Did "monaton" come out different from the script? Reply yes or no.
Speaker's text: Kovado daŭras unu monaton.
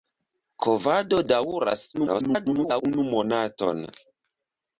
no